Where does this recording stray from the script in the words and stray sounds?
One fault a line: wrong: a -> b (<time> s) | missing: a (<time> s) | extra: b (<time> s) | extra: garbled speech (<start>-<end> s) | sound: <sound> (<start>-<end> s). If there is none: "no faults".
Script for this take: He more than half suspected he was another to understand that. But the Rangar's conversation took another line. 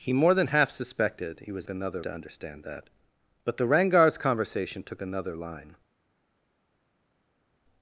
no faults